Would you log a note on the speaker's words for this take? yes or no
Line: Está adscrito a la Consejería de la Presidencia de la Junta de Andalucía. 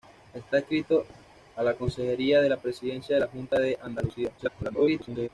yes